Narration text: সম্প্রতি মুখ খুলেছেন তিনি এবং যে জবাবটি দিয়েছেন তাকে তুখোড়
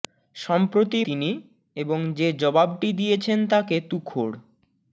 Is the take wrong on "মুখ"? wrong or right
wrong